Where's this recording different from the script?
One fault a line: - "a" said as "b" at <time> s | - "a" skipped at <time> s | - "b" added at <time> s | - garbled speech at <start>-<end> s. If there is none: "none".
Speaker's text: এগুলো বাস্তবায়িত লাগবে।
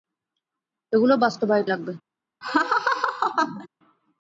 none